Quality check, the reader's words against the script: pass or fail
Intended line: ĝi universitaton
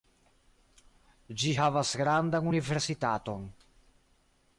fail